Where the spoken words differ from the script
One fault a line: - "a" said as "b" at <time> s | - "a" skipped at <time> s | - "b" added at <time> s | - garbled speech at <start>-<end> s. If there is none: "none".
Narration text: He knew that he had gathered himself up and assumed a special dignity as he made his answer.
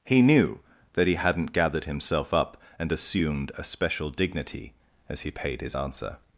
- "had" said as "hadn't" at 1.1 s
- "made" said as "paid" at 5.3 s